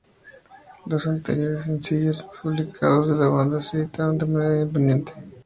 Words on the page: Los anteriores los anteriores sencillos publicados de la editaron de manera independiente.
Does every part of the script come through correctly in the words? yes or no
no